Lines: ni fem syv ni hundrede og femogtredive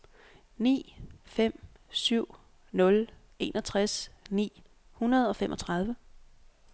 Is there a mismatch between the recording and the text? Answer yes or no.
yes